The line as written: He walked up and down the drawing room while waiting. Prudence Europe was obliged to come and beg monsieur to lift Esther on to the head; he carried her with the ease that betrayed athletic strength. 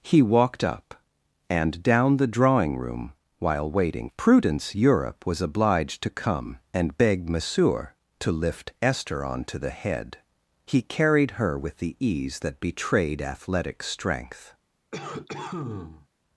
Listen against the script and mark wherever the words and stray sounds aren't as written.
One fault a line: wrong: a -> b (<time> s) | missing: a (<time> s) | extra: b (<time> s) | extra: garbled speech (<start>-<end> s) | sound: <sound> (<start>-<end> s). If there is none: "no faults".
sound: cough (14.9-16.1 s)